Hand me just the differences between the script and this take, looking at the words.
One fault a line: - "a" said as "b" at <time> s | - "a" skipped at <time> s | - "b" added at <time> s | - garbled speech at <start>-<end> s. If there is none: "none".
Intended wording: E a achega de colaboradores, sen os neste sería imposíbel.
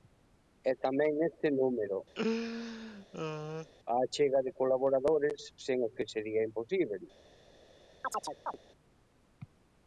- "tamén neste número" added at 0.8 s
- "neste" said as "que" at 6.0 s